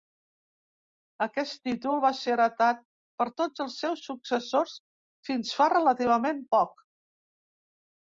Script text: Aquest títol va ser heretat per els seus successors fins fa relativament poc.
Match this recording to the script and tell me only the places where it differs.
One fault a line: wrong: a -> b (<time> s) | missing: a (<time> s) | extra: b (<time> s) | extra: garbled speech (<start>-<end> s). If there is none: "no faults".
extra: tots (3.4 s)